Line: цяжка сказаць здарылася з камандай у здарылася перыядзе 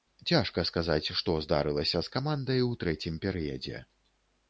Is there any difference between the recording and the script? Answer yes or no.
yes